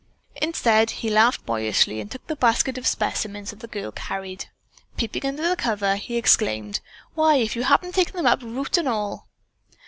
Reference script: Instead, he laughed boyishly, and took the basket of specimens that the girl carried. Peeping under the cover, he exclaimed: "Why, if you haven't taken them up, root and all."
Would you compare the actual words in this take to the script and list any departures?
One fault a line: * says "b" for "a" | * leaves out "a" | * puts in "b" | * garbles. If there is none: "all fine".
all fine